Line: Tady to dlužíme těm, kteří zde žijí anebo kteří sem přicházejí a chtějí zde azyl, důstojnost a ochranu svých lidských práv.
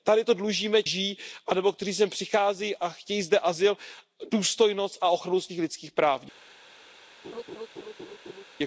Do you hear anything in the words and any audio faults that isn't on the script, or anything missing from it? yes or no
yes